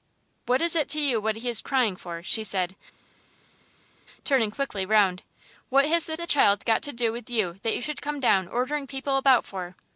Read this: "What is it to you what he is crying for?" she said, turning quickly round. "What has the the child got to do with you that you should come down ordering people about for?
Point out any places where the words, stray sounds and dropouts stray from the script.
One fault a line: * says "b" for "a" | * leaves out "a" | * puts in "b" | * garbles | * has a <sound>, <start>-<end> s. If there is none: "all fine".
all fine